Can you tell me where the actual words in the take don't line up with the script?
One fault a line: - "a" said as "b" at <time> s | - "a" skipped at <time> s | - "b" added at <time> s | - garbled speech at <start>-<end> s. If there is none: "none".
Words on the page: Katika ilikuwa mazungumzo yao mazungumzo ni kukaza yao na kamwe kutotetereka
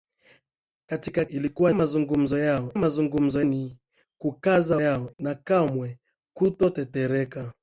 none